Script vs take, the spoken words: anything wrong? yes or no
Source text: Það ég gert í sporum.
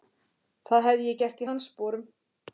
yes